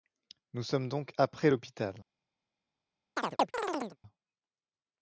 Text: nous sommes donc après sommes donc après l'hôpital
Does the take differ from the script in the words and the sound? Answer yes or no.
yes